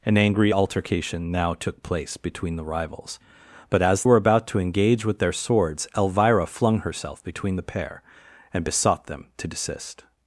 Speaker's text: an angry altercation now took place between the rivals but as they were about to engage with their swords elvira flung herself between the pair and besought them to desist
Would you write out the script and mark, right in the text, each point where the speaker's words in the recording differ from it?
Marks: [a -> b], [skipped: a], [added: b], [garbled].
an angry altercation now took place between the rivals but as [skipped: they] were about to engage with their swords elvira flung herself between the pair and besought them to desist